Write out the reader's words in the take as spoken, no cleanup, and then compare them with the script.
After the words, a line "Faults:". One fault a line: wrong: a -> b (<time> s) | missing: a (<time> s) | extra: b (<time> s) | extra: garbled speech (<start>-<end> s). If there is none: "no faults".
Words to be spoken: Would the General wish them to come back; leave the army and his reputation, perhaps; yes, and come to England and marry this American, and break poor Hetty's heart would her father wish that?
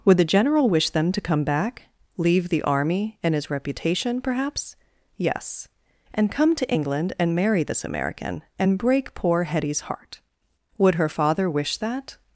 Would the General wish them to come back; leave the army and his reputation, perhaps; yes, and come to England and marry this American, and break poor Hetty's heart would her father wish that?
Faults:
no faults